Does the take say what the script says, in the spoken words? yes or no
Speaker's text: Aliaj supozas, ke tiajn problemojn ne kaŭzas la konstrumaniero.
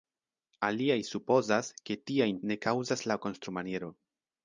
no